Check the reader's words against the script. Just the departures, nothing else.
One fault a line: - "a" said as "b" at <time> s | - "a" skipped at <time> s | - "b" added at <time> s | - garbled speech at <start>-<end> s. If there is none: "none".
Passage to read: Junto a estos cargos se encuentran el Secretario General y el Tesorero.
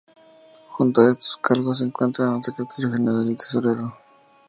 none